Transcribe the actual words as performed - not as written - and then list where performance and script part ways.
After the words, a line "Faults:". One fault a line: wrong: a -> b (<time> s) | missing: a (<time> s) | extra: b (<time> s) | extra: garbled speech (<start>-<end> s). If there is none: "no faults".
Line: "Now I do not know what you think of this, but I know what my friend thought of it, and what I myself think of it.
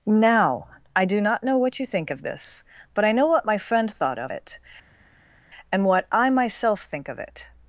"Now I do not know what you think of this, but I know what my friend thought of it, and what I myself think of it.
Faults:
no faults